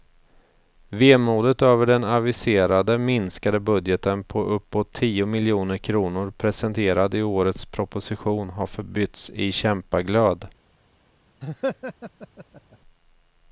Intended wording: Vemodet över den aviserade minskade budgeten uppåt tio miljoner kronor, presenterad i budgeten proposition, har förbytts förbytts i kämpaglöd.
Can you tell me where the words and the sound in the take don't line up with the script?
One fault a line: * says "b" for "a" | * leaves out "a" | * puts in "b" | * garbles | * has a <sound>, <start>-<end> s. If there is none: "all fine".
* puts in "på"
* says "årets" for "budgeten"
* leaves out "förbytts"
* has a laugh, 11.4-12.8 s